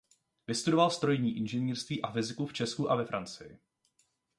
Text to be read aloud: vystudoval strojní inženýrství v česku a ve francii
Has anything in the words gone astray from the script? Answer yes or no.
yes